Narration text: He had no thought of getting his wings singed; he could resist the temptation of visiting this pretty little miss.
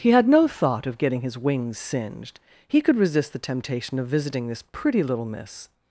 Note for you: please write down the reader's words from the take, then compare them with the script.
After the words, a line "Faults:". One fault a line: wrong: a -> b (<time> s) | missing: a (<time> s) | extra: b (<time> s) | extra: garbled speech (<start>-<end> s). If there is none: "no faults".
He had no thought of getting his wings singed; he could resist the temptation of visiting this pretty little miss.
Faults:
no faults